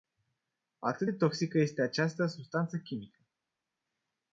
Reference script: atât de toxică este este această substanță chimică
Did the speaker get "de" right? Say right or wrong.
right